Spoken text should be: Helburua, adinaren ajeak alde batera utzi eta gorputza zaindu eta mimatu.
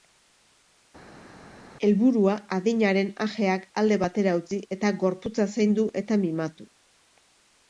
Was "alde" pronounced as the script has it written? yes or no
yes